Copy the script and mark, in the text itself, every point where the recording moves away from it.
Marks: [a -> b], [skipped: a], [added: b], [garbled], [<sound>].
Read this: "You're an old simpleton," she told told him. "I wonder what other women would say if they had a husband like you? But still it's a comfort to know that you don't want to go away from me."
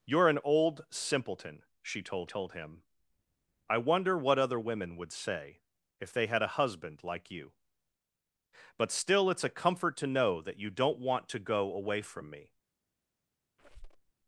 "You're an old simpleton," she told told him. "I wonder what other women would say if they had a husband like you? But still it's a comfort to know that you don't want to go away from me." [squeak]